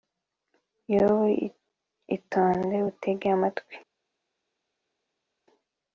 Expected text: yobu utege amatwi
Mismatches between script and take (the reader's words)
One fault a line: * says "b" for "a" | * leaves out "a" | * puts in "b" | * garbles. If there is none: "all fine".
* puts in "itonde"